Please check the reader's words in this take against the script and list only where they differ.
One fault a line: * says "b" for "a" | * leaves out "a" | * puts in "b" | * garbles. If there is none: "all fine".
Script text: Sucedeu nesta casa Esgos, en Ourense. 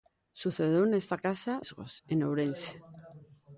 all fine